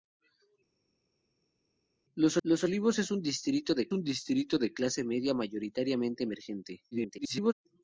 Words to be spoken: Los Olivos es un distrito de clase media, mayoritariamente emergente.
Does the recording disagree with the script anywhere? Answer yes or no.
yes